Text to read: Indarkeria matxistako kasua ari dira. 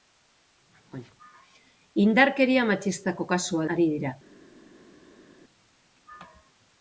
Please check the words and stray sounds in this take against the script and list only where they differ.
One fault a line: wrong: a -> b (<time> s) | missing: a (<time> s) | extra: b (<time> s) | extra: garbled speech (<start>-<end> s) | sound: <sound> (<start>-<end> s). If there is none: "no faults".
no faults